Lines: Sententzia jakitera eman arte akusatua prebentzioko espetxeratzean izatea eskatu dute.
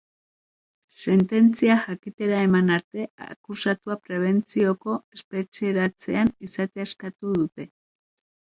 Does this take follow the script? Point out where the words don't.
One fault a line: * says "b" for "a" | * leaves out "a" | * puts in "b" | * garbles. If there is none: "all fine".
all fine